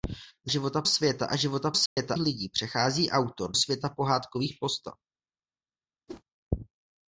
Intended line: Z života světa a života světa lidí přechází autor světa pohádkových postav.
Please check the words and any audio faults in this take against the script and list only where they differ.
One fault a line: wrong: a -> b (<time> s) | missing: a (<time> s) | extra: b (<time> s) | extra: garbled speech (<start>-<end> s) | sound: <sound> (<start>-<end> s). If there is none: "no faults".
sound: dropout (1.9-2.0 s)
sound: whoosh (6.1-6.2 s)